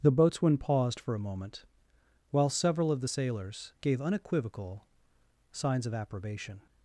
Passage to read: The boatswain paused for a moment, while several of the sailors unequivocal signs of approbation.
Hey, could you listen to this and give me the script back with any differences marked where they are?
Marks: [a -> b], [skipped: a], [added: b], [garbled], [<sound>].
The boatswain paused for a moment, while several of the sailors [added: gave] unequivocal signs of approbation.